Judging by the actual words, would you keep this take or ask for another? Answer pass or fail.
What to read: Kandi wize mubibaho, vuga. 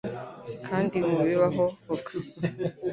fail